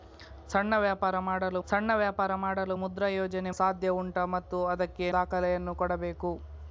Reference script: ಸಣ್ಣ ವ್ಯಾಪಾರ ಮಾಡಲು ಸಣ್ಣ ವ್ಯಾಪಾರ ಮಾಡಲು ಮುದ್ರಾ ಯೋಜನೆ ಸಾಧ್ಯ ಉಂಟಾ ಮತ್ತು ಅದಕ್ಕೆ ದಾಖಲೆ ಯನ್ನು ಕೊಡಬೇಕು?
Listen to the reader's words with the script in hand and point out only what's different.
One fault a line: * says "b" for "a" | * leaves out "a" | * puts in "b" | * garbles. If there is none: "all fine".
all fine